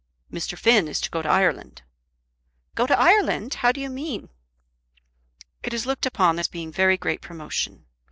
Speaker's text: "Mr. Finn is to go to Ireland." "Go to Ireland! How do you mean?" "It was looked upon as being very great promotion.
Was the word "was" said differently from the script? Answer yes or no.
yes